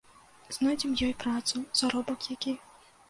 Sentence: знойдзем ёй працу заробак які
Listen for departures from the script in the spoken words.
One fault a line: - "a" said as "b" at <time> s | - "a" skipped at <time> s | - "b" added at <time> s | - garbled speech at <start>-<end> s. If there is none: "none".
none